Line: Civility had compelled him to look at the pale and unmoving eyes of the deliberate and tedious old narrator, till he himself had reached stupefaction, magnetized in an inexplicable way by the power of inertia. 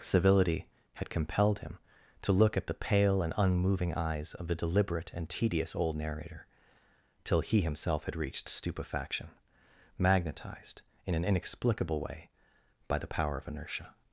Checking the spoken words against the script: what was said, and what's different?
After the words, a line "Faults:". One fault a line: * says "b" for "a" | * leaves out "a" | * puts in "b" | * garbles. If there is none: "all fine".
Civility had compelled him to look at the pale and unmoving eyes of the deliberate and tedious old narrator, till he himself had reached stupefaction, magnetized in an inexplicable way by the power of inertia.
Faults:
all fine